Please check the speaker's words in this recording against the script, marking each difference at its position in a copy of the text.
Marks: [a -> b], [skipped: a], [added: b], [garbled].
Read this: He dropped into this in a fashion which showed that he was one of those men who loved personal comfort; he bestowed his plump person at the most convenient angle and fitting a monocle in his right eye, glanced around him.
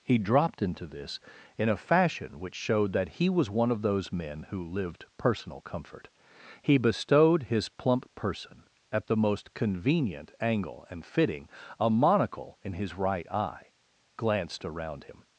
He dropped into this in a fashion which showed that he was one of those men who [loved -> lived] personal comfort; he bestowed his plump person at the most convenient angle and fitting a monocle in his right eye, glanced around him.